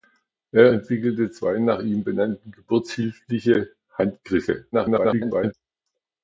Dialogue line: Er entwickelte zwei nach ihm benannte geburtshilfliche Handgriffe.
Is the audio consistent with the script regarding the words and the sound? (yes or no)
no